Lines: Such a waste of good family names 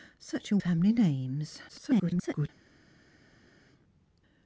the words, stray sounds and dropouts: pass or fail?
fail